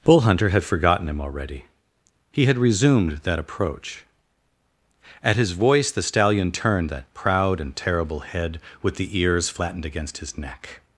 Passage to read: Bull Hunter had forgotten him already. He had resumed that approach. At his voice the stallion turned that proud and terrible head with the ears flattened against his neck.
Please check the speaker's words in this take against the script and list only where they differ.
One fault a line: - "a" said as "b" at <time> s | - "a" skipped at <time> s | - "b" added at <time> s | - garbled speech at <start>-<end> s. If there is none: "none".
none